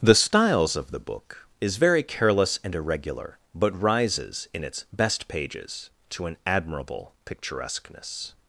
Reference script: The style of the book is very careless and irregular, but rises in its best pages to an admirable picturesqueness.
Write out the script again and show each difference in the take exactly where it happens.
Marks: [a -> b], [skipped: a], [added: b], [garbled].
The [style -> styles] of the book is very careless and irregular, but rises in its best pages to an admirable picturesqueness.